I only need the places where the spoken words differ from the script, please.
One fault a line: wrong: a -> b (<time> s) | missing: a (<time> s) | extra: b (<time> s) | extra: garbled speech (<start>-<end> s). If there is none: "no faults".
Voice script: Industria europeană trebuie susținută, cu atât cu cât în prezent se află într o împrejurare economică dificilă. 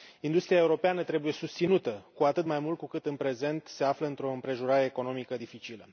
extra: mai mult (2.4 s)